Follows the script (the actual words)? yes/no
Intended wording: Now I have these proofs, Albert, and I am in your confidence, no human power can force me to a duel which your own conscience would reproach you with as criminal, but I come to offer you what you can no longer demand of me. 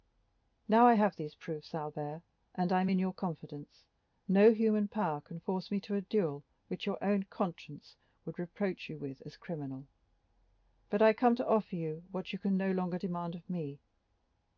yes